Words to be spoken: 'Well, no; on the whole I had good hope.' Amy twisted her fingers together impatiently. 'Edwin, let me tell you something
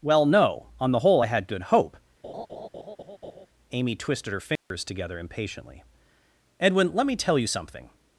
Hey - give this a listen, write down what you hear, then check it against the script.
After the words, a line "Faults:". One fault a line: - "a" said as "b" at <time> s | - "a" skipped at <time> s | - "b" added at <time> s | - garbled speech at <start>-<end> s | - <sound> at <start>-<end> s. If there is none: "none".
'Well, no; on the whole I had good hope.' Amy twisted her fingers together impatiently. 'Edwin, let me tell you something
Faults:
- laugh at 2.2-3.5 s
- dropout at 4.6-4.7 s